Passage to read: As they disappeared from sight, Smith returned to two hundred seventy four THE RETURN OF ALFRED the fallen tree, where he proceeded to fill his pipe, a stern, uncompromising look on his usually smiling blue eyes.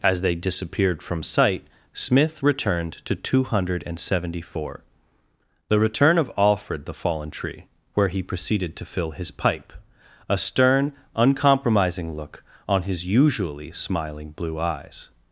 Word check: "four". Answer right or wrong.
right